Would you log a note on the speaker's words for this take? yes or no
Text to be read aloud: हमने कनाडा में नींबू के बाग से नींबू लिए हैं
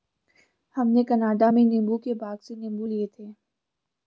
yes